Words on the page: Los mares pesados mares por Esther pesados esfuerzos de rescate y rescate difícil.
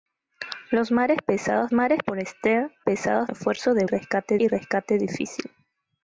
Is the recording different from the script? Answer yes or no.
no